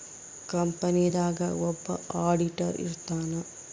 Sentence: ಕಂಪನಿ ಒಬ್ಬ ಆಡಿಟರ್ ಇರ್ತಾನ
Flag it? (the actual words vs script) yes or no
yes